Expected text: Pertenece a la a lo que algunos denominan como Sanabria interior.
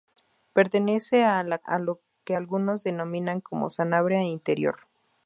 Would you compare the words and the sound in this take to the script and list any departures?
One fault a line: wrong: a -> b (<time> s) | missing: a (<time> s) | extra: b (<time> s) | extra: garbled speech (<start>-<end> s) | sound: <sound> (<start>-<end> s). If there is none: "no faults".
no faults